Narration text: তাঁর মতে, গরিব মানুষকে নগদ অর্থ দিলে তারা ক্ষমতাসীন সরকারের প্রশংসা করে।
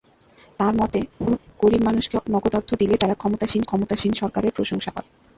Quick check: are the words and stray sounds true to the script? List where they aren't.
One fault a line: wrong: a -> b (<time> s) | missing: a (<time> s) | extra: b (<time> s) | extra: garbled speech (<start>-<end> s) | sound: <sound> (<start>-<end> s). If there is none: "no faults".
sound: laugh (1.2-1.4 s)
extra: ক্ষমতাসীন (3.6 s)